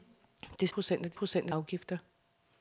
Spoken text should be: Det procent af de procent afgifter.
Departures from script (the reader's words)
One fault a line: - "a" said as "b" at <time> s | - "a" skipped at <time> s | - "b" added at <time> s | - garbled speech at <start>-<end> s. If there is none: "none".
none